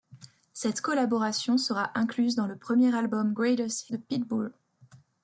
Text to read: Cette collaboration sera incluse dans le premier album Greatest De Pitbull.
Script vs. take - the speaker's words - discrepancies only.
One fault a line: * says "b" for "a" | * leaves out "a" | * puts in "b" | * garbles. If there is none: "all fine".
all fine